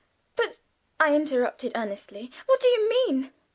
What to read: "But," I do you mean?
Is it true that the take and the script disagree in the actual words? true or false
true